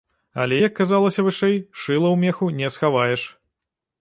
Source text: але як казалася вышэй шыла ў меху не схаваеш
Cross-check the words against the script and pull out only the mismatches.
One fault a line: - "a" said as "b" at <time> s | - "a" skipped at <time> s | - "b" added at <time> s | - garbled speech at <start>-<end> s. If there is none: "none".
none